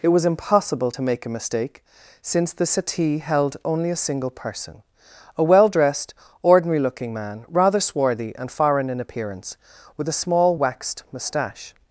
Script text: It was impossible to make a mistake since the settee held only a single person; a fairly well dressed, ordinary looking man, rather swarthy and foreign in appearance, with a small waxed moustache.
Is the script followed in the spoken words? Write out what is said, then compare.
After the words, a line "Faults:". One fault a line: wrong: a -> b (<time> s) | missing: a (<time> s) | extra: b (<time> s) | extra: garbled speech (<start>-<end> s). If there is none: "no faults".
It was impossible to make a mistake since the settee held only a single person; a well dressed, ordinary looking man, rather swarthy and foreign in appearance, with a small waxed moustache.
Faults:
missing: fairly (5.4 s)